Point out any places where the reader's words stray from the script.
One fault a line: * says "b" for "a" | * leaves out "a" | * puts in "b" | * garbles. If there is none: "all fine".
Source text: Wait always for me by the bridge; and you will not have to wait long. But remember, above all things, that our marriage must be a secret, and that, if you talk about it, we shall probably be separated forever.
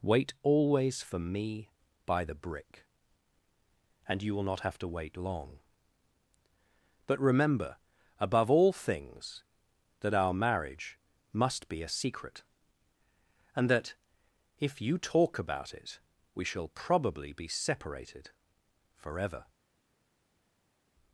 * says "brick" for "bridge"